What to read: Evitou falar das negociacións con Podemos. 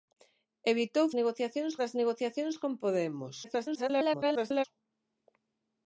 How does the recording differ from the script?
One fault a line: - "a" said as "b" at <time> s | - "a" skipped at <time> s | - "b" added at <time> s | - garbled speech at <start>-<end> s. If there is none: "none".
- "falar" said as "negociacións" at 1.2 s
- garbled speech at 3.4-4.6 s